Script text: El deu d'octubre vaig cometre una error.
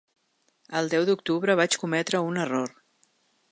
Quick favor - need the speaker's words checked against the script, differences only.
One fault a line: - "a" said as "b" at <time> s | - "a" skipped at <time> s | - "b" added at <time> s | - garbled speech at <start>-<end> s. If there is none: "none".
- "una" said as "un" at 2.3 s